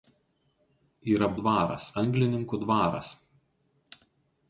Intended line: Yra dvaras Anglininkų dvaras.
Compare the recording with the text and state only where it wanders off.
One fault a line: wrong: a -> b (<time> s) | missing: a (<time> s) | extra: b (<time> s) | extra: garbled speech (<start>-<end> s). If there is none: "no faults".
no faults